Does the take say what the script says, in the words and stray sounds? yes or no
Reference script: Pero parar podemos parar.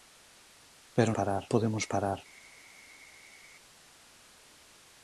yes